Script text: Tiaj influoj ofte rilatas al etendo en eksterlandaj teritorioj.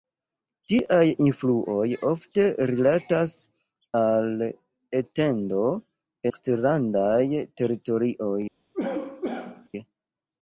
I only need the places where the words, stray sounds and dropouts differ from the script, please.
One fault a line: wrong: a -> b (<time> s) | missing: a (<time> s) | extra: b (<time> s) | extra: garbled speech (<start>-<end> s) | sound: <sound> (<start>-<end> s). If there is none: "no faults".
missing: en (5.7 s)
sound: cough (8.7-9.7 s)